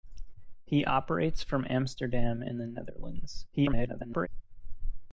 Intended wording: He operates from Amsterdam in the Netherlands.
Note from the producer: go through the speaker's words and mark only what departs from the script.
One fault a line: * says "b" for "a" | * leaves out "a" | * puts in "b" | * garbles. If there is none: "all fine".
* garbles